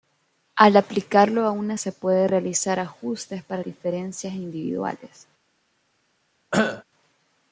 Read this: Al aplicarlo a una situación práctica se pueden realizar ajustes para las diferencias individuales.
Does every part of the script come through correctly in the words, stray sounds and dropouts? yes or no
no